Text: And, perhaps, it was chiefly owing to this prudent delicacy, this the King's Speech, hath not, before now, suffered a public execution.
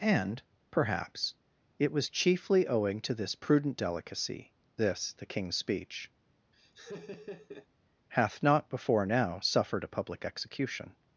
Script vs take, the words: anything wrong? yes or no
no